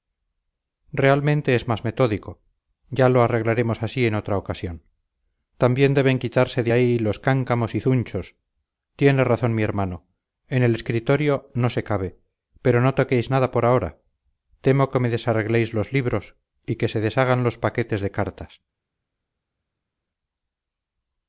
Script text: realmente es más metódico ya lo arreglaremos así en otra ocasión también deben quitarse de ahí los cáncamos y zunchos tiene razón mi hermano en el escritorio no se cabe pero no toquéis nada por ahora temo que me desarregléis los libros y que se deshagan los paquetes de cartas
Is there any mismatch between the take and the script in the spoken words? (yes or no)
no